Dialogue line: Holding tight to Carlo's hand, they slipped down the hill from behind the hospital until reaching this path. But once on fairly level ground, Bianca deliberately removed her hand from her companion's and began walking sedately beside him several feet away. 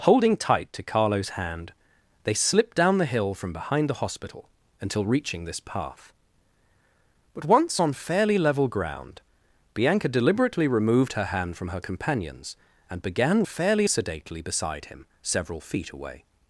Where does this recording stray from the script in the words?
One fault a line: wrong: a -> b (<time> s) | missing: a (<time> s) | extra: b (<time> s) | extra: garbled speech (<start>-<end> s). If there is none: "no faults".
wrong: walking -> fairly (13.4 s)